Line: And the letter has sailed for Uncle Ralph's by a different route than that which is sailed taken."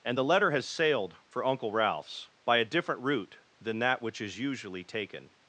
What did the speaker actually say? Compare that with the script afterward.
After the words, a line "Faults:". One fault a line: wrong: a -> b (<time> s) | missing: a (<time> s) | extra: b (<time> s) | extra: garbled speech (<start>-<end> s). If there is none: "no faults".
And the letter has sailed for Uncle Ralph's by a different route than that which is usually taken."
Faults:
wrong: sailed -> usually (4.4 s)